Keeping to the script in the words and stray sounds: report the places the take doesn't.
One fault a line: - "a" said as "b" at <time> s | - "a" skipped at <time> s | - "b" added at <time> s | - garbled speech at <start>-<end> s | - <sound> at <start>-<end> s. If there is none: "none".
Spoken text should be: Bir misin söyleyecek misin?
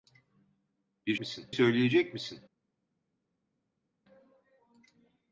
none